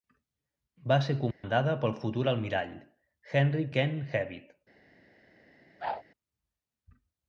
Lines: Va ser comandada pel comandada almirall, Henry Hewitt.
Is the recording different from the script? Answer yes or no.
yes